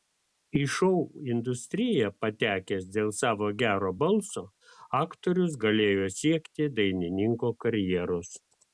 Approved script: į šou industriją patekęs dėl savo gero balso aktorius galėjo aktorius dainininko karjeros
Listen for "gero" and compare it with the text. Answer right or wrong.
right